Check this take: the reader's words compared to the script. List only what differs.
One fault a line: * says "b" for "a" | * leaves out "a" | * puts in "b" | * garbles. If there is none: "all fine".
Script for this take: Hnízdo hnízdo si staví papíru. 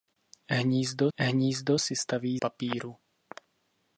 all fine